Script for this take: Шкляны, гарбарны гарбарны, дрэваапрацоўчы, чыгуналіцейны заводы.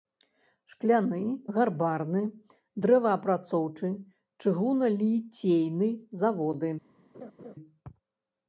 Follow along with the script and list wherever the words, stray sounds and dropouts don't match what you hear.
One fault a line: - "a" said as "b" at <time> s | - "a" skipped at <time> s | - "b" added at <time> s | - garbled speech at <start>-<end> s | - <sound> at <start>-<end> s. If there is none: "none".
- "гарбарны" skipped at 2.2 s
- laugh at 7.1-7.6 s